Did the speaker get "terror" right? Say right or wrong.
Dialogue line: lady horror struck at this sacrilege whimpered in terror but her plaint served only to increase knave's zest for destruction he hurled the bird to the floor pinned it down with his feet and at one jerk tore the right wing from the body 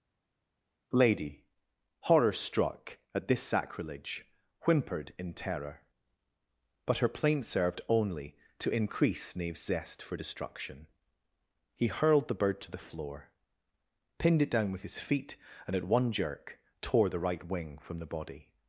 right